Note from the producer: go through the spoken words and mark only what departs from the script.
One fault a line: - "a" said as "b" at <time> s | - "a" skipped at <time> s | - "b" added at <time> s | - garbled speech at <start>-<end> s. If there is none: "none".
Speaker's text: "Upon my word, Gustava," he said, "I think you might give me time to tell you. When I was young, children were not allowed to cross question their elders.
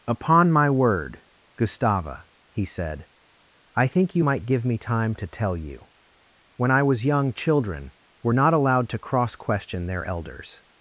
none